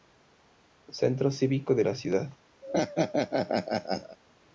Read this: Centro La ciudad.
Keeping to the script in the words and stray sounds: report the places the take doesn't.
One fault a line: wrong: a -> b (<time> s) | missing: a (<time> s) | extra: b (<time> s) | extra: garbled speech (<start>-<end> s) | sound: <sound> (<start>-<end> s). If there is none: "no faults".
extra: Cívico de (1.3 s)
sound: laugh (2.6-4.2 s)